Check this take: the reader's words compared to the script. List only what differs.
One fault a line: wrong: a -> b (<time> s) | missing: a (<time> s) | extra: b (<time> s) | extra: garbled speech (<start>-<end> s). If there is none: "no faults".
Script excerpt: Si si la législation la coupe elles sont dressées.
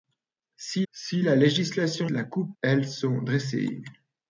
no faults